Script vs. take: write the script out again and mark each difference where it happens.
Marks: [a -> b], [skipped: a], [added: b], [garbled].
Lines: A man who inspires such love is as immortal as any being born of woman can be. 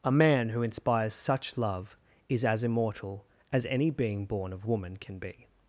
A man who inspires such love is as immortal as any being born of woman can be.